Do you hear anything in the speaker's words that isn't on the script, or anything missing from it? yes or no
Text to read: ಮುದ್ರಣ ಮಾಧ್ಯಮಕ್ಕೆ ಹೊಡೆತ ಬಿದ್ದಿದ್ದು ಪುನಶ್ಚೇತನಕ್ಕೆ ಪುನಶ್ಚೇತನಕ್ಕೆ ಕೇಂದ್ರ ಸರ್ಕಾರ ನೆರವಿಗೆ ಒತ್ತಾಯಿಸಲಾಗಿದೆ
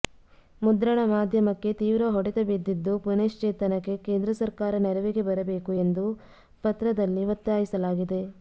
yes